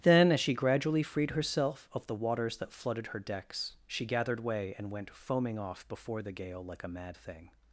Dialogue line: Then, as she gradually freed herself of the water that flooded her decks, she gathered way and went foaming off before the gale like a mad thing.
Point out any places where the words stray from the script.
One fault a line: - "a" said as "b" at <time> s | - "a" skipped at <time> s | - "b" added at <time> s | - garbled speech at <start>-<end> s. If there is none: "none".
- "water" said as "waters" at 2.1 s